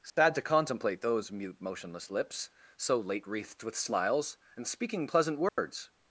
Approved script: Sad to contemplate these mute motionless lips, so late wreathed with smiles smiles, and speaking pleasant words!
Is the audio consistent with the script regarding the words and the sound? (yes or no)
no